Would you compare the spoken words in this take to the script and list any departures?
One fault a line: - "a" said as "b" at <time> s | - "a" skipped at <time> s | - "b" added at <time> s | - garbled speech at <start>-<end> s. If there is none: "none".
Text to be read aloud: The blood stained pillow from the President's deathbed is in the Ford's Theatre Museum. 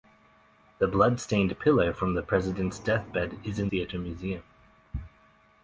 - "the Ford's" skipped at 3.7 s